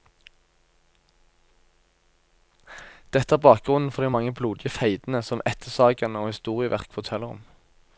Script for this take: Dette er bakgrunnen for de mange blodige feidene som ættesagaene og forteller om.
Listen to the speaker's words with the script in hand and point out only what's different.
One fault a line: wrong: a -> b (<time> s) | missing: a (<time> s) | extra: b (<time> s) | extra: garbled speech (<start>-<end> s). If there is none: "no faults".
extra: historieverk (6.3 s)